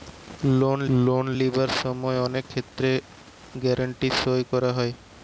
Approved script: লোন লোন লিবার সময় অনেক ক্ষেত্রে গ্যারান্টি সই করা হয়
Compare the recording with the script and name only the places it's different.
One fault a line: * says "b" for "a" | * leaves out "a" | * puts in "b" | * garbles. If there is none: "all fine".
all fine